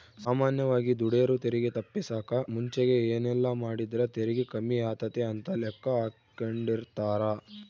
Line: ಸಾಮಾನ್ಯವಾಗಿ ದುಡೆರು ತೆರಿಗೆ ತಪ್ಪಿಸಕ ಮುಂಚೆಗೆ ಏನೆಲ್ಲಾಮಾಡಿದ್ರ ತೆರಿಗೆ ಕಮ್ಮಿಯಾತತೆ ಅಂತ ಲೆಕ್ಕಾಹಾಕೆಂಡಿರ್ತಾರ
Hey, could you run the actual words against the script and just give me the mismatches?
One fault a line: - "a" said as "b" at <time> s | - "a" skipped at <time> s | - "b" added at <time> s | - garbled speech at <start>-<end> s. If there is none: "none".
none